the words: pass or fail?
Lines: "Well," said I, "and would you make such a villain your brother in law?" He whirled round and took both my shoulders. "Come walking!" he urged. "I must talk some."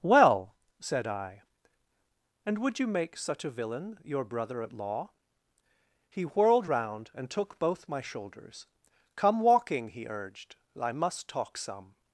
fail